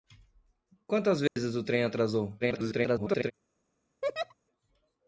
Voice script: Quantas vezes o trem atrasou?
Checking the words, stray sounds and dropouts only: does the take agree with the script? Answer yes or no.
no